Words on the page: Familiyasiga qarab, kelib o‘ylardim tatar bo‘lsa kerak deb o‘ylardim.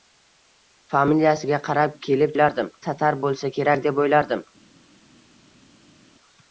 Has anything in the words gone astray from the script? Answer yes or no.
no